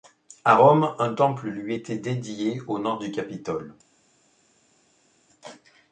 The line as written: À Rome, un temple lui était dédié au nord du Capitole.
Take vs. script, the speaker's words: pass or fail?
pass